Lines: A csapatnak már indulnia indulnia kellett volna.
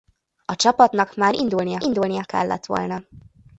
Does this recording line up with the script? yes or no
yes